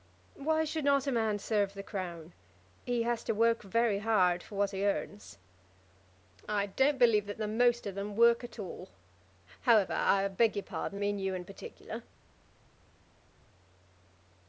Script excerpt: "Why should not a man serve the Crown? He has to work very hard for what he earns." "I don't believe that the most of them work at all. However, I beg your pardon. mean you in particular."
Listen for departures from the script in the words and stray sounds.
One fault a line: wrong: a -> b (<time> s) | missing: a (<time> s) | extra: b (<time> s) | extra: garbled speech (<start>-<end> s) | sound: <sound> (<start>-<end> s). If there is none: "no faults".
no faults